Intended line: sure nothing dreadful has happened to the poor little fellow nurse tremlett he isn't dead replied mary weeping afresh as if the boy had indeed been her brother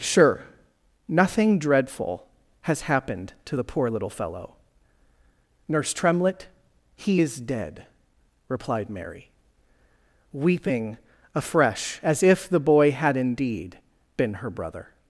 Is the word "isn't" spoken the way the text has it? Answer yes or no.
no